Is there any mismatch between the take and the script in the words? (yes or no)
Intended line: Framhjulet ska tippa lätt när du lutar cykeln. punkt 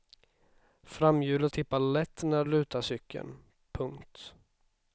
yes